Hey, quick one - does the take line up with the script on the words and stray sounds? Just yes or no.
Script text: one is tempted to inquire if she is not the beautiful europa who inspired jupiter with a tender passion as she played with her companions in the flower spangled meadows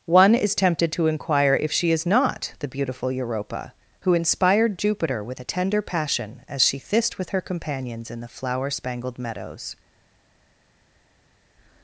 no